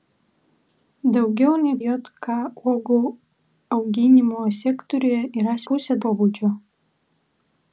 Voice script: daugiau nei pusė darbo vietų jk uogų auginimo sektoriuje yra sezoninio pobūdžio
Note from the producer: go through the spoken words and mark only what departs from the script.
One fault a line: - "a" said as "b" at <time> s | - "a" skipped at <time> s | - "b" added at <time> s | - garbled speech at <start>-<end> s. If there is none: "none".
- "pusė darbo vietų" skipped at 1.7 s
- "sezoninio" said as "pusė" at 5.7 s